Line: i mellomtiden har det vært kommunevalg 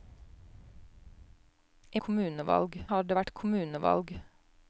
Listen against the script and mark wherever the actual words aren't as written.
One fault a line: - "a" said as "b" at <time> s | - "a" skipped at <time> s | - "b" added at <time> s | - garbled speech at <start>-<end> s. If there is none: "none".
- "mellomtiden" said as "kommunevalg" at 2.1 s